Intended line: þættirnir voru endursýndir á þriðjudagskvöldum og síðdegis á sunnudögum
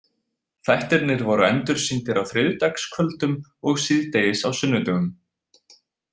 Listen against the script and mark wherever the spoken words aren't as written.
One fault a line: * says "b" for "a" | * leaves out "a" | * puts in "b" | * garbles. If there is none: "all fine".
all fine